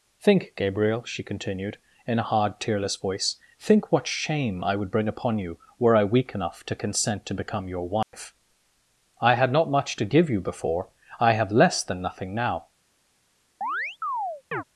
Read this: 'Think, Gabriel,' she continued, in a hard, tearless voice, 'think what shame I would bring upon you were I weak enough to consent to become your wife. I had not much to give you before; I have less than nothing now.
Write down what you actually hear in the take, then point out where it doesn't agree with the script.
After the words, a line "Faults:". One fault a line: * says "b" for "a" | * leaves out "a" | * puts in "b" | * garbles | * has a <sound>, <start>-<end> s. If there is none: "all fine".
'Think, Gabriel,' she continued, in a hard, tearless voice, 'think what shame I would bring upon you were I weak enough to consent to become your wife. I had not much to give you before; I have less than nothing now.
Faults:
* has a dropout, 8.0-8.1 s
* has a chirp, 13.6-14.6 s